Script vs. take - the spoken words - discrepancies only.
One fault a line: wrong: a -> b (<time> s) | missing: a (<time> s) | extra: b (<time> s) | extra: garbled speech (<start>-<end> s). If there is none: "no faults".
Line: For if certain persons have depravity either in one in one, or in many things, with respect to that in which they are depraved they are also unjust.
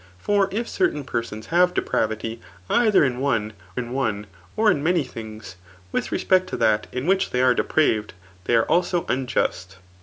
no faults